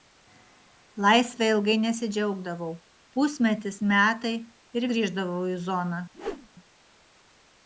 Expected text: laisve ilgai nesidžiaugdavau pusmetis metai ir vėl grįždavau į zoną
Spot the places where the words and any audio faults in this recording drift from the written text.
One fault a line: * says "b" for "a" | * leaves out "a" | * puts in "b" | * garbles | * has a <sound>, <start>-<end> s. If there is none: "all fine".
* leaves out "vėl"
* has a whoosh, 6.1-6.5 s